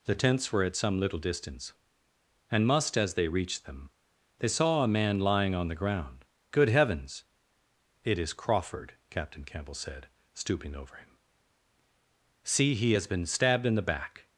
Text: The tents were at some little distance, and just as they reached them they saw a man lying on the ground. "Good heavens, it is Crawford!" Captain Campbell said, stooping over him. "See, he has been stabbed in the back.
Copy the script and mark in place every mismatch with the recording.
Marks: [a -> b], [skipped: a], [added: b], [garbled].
The tents were at some little distance, and [just -> must] as they reached them they saw a man lying on the ground. "Good heavens, it is Crawford!" Captain Campbell said, stooping over him. "See, he has been stabbed in the back.